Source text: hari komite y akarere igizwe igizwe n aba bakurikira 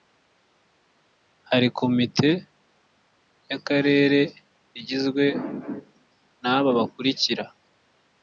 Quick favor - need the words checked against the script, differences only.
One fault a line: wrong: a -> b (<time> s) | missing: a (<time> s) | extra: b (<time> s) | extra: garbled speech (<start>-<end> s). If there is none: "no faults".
missing: igizwe (5.3 s)